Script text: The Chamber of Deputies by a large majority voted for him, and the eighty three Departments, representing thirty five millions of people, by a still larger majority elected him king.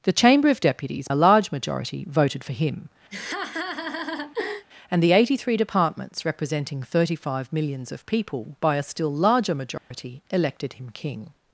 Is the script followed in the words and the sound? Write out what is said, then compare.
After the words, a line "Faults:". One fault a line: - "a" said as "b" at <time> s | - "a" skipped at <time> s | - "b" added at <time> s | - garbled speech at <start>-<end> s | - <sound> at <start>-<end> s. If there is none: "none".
The Chamber of Deputies a large majority voted for him, and the eighty three Departments, representing thirty five millions of people, by a still larger majority elected him king.
Faults:
- "by" skipped at 1.1 s
- laugh at 3.1-4.7 s
- dropout at 9.8-9.9 s